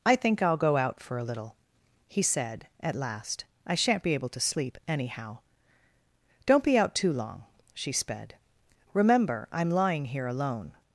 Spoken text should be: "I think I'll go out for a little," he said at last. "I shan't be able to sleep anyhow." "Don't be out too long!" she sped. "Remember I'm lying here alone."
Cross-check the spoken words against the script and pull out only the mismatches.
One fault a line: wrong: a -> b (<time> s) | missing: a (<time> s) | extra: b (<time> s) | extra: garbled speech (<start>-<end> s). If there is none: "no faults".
no faults